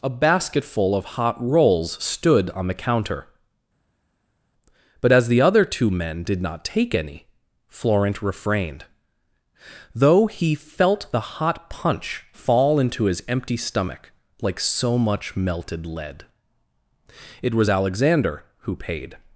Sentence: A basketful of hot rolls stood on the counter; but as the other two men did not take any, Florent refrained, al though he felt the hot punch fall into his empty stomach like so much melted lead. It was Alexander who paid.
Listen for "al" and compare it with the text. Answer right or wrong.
wrong